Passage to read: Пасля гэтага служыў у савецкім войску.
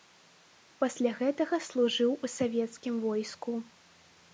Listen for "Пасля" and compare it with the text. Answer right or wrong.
right